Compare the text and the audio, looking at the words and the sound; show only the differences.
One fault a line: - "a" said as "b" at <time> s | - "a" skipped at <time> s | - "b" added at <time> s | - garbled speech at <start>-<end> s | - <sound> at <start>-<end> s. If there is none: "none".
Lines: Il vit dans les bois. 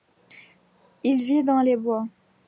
none